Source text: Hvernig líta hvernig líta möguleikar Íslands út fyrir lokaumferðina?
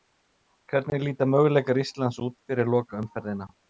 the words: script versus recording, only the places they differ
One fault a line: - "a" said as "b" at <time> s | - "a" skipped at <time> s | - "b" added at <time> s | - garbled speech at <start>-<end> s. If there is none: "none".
- "hvernig líta" skipped at 1.3 s